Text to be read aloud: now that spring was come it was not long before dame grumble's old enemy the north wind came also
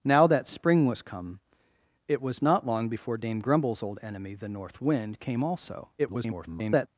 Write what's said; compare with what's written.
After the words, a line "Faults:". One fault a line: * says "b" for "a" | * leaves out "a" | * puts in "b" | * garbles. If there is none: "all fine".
now that spring was come it was not long before dame grumble's old enemy the north wind came also [garbled]
Faults:
* garbles